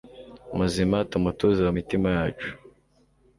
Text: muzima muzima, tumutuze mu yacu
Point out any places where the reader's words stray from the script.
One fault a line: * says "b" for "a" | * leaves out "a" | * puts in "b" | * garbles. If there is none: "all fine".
* leaves out "muzima"
* puts in "mitima"